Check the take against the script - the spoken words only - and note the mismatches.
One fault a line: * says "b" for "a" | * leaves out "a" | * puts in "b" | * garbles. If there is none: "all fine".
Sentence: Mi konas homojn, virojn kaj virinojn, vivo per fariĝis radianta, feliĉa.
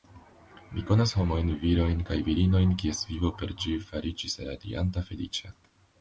* puts in "kies"
* puts in "ĝi"